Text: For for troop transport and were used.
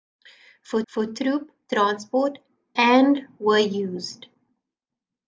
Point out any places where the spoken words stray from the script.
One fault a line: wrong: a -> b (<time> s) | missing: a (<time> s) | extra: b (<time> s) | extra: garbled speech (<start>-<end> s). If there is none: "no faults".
no faults